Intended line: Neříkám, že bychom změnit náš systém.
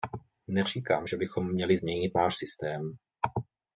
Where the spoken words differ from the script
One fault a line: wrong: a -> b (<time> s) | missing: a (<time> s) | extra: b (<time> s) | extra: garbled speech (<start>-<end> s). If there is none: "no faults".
extra: měli (1.5 s)